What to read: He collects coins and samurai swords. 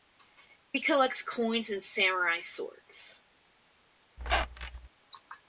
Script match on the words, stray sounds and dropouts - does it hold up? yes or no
no